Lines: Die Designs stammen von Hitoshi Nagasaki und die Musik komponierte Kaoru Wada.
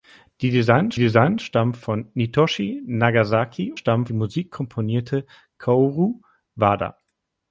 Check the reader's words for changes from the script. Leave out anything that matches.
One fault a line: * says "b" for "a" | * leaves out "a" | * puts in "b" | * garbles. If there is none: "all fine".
* puts in "Designs"
* says "stammen" for "und"